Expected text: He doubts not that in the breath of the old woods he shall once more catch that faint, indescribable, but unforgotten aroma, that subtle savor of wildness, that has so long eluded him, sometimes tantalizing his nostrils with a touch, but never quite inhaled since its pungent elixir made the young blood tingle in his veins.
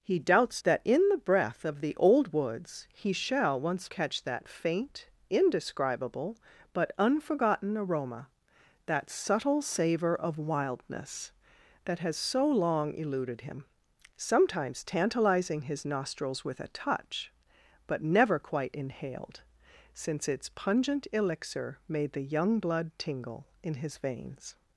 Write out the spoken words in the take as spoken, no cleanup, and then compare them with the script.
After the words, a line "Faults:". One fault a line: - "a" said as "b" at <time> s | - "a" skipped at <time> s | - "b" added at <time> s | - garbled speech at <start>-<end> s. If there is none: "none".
He doubts that in the breath of the old woods he shall once catch that faint, indescribable, but unforgotten aroma, that subtle savor of wildness, that has so long eluded him, sometimes tantalizing his nostrils with a touch, but never quite inhaled since its pungent elixir made the young blood tingle in his veins.
Faults:
- "not" skipped at 0.6 s
- "more" skipped at 3.9 s